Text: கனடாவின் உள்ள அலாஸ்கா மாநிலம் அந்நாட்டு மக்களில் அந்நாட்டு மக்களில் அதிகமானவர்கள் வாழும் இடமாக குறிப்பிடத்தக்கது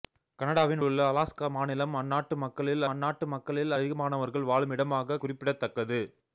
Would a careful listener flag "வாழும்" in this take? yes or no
no